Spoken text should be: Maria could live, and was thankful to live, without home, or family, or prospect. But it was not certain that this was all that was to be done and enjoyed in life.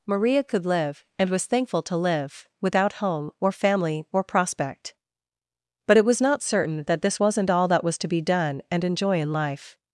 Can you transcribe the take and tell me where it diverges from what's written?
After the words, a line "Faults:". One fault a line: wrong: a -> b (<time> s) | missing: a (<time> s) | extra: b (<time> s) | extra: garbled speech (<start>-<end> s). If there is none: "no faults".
Maria could live, and was thankful to live, without home, or family, or prospect. But it was not certain that this wasn't all that was to be done and enjoy in life.
Faults:
wrong: was -> wasn't (7.2 s)
wrong: enjoyed -> enjoy (8.8 s)